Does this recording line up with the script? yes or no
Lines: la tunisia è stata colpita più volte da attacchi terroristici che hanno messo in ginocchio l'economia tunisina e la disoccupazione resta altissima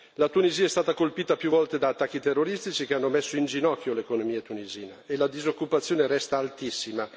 yes